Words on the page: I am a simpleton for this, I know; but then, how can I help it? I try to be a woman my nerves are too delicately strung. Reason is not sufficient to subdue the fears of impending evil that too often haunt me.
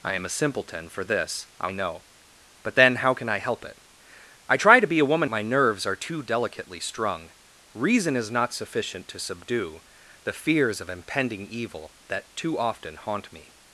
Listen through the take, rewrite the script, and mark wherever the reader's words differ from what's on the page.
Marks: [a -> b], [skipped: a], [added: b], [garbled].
I am a simpleton for this, I know; but then, how can I help it? I try to be a woman my nerves are too delicately strung. Reason is not sufficient to subdue the fears of impending evil that too often haunt me.